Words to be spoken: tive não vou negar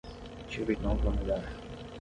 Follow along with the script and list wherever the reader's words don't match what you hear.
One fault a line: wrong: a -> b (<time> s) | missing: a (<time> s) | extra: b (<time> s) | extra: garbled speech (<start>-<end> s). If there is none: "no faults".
no faults